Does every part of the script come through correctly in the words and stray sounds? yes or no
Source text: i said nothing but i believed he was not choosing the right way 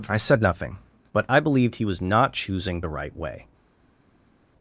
yes